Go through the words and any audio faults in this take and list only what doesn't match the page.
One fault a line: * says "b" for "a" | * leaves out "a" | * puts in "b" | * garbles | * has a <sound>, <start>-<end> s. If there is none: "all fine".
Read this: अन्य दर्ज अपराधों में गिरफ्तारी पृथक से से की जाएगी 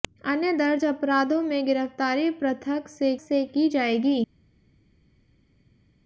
all fine